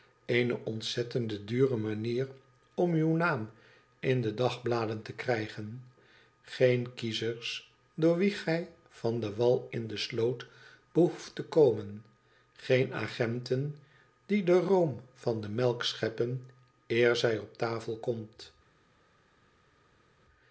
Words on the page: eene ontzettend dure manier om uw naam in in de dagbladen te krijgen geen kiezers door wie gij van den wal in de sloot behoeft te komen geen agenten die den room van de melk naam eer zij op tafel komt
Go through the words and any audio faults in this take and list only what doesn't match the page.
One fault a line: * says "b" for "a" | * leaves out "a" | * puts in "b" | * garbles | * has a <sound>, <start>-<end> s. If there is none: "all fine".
* leaves out "in"
* says "scheppen" for "naam"